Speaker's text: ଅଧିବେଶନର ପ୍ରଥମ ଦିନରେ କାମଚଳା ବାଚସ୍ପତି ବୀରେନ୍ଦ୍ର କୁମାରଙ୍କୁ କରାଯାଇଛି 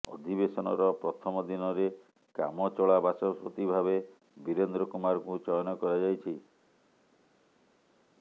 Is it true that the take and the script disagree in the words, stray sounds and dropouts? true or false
true